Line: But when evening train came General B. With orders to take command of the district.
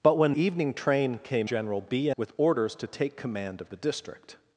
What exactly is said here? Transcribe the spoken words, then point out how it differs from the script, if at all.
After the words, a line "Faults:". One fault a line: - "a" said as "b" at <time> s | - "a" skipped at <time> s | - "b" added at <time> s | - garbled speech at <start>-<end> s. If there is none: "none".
But when evening train came General B. With orders to take command of the district.
Faults:
none